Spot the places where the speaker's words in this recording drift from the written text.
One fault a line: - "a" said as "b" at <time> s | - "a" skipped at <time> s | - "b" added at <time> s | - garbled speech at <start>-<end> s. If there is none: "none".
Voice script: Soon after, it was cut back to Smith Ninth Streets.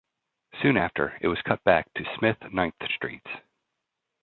none